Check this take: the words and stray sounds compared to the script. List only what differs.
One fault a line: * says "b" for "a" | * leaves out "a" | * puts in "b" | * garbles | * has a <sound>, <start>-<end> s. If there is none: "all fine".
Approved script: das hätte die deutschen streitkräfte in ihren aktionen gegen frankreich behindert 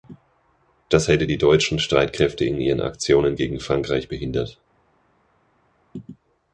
all fine